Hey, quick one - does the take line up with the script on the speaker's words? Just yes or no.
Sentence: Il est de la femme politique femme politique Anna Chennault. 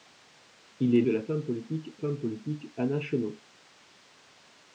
yes